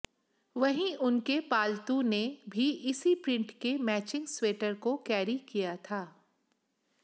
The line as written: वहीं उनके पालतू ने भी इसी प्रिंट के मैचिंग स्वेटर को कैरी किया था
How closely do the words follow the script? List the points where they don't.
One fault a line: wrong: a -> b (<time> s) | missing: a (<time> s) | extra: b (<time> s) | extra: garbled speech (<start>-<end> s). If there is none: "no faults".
no faults